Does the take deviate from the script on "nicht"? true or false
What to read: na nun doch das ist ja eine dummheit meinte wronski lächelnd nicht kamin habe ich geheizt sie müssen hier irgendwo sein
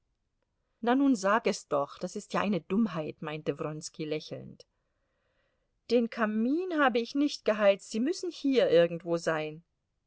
true